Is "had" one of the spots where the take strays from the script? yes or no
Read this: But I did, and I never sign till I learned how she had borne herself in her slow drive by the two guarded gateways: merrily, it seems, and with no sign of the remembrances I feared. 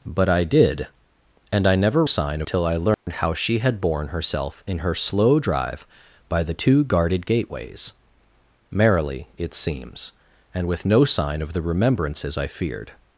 no